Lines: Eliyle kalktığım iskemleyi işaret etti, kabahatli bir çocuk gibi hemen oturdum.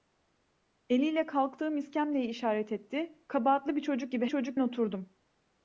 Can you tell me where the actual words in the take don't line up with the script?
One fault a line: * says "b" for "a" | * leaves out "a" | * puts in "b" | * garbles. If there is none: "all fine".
* says "çocuk" for "hemen"